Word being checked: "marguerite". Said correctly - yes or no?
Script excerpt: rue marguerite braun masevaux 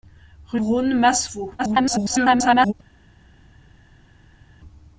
no